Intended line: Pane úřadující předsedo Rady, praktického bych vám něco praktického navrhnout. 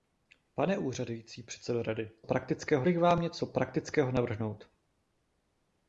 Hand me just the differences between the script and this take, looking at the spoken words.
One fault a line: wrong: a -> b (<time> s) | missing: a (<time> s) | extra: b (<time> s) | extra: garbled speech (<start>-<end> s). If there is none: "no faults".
no faults